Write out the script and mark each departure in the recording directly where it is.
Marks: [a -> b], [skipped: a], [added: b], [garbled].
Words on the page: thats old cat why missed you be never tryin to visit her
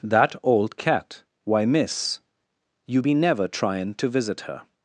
[thats -> that] old cat why [missed -> miss] you be never tryin to visit her